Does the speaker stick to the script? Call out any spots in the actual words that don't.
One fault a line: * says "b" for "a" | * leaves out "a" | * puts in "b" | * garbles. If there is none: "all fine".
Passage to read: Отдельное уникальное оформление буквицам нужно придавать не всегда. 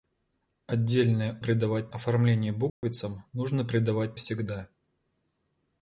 * says "придавать" for "уникальное"
* leaves out "не"